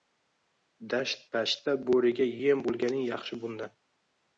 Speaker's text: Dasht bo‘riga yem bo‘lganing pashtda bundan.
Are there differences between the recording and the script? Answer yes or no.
yes